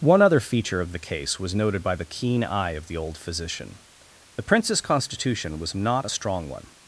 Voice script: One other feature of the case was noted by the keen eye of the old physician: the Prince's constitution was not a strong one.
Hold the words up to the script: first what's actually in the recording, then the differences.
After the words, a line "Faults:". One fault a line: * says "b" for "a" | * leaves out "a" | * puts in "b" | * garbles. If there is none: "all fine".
One other feature of the case was noted by the keen eye of the old physician: the Prince's constitution was not a strong one.
Faults:
all fine